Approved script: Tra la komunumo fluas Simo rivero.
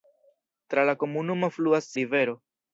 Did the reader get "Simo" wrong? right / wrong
wrong